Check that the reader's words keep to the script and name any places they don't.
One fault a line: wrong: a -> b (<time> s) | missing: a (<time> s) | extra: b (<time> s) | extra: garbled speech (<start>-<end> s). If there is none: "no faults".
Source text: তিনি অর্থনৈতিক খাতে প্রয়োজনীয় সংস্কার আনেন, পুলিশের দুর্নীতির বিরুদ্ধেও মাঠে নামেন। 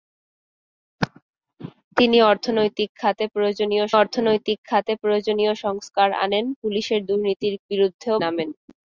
extra: অর্থনৈতিক খাতে প্রয়োজনীয় (3.9 s)
missing: মাঠে (8.2 s)